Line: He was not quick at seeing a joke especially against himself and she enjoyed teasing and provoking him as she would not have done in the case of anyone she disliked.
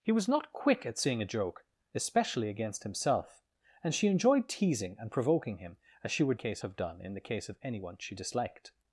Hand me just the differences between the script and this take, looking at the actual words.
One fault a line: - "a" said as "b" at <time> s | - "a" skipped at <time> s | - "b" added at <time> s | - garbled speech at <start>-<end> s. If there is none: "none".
- "not" said as "case" at 6.3 s